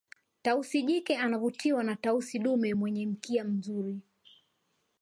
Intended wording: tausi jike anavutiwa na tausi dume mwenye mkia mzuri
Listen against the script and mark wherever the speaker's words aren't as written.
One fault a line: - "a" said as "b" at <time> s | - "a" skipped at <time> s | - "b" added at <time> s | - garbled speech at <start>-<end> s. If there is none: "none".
none